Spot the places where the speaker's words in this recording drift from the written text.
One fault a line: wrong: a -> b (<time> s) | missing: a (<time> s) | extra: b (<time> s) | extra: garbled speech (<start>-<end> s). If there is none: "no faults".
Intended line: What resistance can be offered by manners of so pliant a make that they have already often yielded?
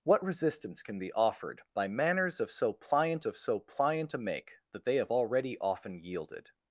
extra: of so pliant (3.2 s)